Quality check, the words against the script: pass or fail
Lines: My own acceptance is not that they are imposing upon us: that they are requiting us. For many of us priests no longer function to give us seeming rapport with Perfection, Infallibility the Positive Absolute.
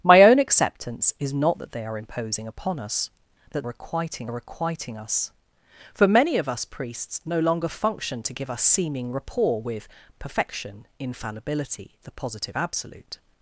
fail